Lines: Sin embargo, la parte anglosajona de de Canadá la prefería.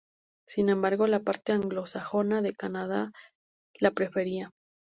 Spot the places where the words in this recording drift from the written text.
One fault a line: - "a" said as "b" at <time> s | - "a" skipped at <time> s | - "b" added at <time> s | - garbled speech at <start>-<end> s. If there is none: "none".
- "de" skipped at 2.5 s